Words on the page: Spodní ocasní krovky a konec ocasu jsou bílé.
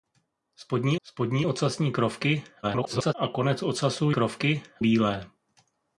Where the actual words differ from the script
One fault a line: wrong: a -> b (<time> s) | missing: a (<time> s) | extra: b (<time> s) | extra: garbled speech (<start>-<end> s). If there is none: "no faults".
extra: spodní (1.0 s)
extra: garbled speech (2.6-3.1 s)
wrong: jsou -> krovky (4.1 s)